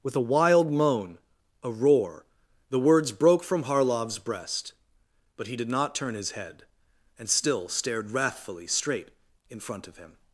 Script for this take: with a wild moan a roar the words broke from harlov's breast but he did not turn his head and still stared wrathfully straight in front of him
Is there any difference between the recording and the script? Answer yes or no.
no